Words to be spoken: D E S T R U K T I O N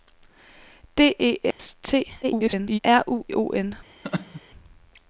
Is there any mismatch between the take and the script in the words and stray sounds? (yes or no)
yes